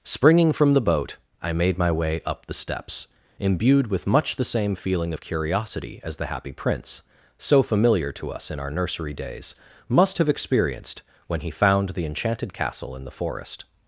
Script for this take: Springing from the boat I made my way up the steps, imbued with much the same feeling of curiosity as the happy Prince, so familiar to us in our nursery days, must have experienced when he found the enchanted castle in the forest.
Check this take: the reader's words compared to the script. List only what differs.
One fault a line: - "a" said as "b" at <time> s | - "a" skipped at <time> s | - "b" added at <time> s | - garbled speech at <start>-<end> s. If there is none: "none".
none